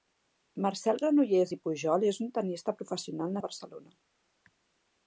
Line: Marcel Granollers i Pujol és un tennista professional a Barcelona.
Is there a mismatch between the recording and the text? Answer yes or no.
no